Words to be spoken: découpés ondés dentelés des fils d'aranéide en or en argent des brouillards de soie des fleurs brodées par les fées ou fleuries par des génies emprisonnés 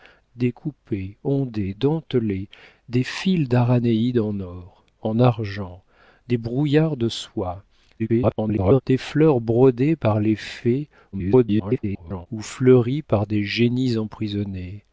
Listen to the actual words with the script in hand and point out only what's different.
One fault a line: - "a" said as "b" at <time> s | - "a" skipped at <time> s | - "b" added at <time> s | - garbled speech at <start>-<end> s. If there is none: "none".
- garbled speech at 8.0-8.8 s
- garbled speech at 11.1-12.3 s